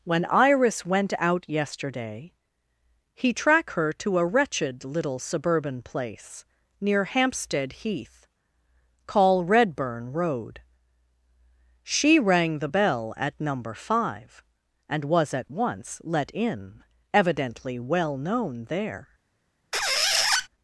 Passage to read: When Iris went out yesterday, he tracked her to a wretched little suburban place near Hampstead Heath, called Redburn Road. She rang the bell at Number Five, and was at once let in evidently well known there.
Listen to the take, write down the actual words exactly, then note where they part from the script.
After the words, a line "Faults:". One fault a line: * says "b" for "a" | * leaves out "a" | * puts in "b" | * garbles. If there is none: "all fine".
When Iris went out yesterday, he track her to a wretched little suburban place near Hampstead Heath, call Redburn Road. She rang the bell at Number Five, and was at once let in evidently well known there.
Faults:
* says "track" for "tracked"
* says "call" for "called"